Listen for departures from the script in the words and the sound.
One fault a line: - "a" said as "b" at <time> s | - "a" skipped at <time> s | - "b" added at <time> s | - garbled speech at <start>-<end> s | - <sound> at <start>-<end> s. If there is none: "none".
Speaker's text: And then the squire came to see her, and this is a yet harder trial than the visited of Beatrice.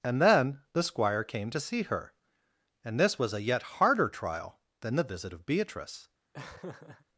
- "is" said as "was" at 3.2 s
- "visited" said as "visit" at 5.0 s
- laugh at 6.3-7.1 s